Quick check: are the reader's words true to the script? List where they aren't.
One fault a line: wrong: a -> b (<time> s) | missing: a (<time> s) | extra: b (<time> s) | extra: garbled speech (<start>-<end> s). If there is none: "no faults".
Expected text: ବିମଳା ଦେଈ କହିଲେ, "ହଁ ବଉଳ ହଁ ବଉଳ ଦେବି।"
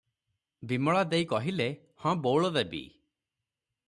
missing: ହଁ ବଉଳ (2.5 s)